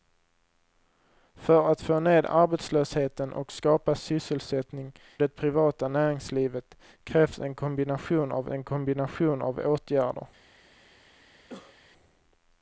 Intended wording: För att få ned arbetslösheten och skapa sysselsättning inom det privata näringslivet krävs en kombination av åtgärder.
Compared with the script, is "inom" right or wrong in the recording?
wrong